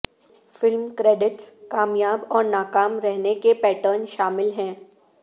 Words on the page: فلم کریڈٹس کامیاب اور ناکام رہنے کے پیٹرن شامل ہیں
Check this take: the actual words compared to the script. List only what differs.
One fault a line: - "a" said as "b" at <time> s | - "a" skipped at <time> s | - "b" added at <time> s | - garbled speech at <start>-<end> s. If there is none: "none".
none